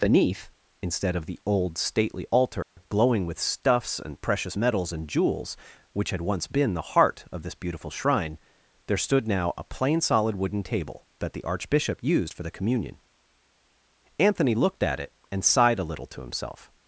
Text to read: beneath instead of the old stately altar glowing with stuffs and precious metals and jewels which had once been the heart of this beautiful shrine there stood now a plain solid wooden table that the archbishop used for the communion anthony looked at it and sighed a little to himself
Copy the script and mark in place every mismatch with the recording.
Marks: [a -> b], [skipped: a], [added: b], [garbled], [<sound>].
beneath instead of the old stately altar [dropout] glowing with stuffs and precious metals and jewels which had once been the heart of this beautiful shrine there stood now a plain solid wooden table that the archbishop used for the communion anthony looked at it and sighed a little to himself